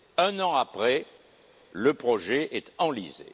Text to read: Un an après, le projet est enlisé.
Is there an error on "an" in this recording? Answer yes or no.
no